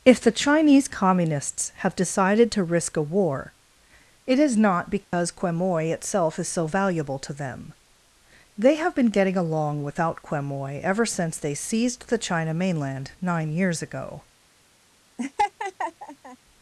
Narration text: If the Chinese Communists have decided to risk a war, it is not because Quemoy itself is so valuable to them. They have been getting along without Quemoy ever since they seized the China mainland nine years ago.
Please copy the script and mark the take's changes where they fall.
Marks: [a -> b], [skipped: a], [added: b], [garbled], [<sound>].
If the Chinese Communists have decided to risk a war, it is not because [dropout] Quemoy itself is so valuable to them. They have been getting along without Quemoy ever since they seized the China mainland nine years ago. [laugh]